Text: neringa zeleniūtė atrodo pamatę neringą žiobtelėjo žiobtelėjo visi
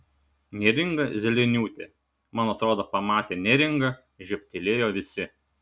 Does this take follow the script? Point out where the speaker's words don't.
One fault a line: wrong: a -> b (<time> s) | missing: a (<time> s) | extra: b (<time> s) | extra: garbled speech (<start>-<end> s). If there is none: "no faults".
extra: man (2.4 s)
missing: žiobtelėjo (4.9 s)